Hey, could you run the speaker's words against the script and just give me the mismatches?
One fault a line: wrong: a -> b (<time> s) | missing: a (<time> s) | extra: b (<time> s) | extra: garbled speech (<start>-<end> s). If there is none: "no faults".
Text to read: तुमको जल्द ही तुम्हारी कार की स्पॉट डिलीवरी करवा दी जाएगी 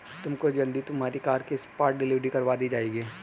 no faults